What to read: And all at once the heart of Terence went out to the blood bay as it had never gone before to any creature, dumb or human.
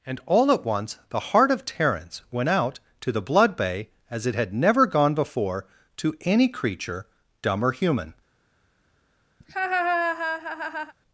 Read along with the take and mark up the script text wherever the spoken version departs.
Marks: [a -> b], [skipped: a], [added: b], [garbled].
And all at once the heart of Terence went out to the blood bay as it had never gone before to any creature, dumb or human.